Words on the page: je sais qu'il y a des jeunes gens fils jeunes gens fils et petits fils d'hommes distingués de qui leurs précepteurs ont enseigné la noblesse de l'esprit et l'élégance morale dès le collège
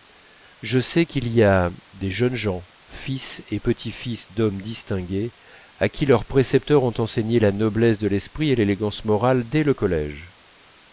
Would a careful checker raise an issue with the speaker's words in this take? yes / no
yes